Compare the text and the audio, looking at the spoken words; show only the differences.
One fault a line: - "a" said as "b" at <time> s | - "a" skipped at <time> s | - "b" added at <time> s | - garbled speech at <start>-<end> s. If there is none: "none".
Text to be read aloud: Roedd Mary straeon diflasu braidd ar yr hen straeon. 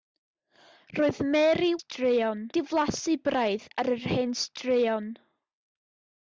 none